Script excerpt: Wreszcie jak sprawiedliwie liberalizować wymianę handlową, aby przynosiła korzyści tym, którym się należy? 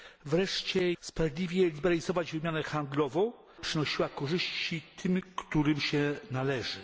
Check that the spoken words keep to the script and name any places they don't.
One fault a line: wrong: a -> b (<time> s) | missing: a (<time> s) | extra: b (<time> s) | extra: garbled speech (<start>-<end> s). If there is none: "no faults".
missing: jak (0.9 s)
missing: aby (3.3 s)